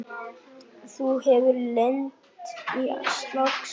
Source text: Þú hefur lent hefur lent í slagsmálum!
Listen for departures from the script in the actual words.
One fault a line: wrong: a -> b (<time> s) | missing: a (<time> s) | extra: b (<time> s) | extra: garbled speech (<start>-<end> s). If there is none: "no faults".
missing: hefur lent (2.5 s)